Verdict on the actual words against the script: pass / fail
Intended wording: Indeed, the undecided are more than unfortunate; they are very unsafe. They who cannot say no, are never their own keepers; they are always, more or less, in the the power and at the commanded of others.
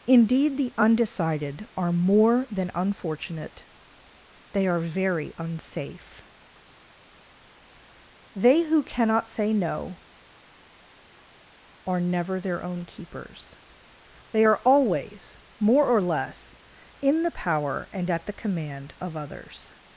fail